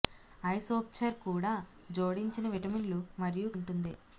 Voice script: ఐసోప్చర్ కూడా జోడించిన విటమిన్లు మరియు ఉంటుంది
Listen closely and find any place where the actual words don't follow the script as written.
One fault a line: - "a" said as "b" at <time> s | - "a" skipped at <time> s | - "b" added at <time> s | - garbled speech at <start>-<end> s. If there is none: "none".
none